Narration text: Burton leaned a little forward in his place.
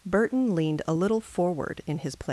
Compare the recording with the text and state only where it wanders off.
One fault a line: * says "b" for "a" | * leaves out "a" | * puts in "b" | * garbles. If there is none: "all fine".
all fine